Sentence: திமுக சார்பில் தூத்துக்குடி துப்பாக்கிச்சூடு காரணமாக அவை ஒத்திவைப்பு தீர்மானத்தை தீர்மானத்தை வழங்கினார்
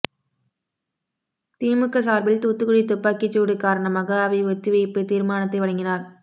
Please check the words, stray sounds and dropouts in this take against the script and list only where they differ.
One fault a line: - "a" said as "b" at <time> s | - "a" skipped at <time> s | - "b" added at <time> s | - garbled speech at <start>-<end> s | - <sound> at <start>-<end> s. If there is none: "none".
- "தீர்மானத்தை" skipped at 5.6 s